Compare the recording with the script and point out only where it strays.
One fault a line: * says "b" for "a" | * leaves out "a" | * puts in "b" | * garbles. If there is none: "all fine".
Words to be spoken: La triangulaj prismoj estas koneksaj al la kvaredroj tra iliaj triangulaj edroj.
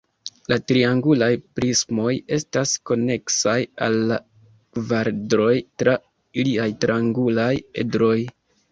all fine